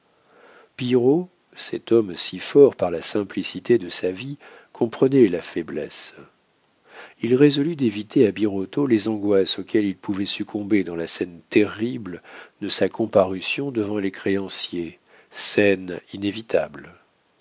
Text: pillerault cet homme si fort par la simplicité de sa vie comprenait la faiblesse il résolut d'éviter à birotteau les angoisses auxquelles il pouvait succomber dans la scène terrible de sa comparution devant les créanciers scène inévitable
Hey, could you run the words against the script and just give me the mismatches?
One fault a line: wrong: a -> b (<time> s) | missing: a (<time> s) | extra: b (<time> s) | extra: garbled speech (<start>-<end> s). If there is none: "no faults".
no faults